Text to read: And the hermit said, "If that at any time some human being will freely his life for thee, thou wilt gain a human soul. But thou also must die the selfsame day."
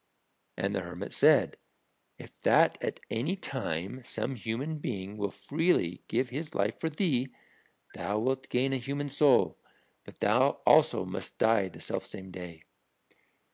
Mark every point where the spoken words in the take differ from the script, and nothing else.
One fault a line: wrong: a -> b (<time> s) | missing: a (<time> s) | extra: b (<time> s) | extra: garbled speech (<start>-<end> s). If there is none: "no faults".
extra: give (6.1 s)